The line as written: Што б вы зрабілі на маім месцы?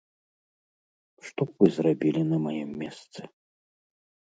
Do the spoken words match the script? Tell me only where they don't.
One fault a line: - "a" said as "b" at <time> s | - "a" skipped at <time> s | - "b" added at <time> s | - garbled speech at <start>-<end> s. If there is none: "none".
none